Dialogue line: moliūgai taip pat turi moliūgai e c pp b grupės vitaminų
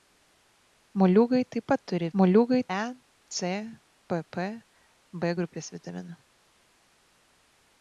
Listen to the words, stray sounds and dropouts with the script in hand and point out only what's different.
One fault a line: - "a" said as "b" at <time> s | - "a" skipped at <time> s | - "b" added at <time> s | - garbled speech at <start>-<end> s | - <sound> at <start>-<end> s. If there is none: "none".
none